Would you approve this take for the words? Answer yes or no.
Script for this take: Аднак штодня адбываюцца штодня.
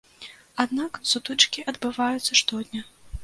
no